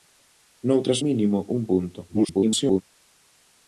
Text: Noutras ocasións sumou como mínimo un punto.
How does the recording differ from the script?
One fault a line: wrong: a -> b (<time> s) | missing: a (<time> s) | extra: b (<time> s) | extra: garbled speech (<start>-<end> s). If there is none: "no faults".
missing: ocasións sumou como (1.0 s)
extra: garbled speech (2.1-2.8 s)